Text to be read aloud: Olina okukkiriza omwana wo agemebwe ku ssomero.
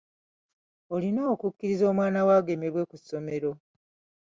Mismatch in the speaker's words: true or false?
false